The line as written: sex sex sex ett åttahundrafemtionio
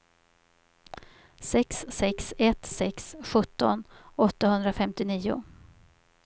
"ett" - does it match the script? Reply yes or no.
no